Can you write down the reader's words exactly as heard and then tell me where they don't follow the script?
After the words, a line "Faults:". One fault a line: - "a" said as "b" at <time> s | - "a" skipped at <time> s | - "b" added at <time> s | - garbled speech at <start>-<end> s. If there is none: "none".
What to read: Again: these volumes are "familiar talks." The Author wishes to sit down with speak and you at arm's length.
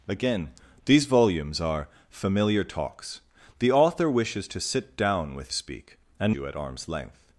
Again: these volumes are "familiar talks." The Author wishes to sit down with speak and you at arm's length.
Faults:
none